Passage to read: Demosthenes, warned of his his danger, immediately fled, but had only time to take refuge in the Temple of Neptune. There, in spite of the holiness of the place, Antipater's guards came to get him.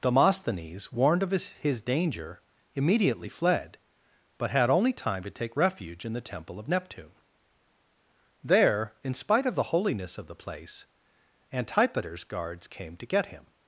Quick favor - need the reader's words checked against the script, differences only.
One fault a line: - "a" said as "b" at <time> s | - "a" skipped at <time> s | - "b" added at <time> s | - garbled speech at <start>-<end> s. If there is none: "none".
none